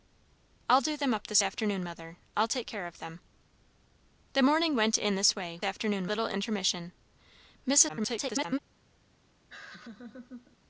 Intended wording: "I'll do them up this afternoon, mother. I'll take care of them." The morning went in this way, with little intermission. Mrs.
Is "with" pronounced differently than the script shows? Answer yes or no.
yes